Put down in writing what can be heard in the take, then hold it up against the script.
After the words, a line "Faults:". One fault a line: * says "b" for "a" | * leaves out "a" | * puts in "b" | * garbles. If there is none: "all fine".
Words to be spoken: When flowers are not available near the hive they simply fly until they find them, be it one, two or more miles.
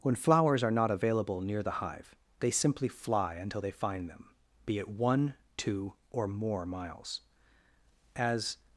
When flowers are not available near the hive they simply fly until they find them, be it one, two or more miles. As
Faults:
* puts in "As"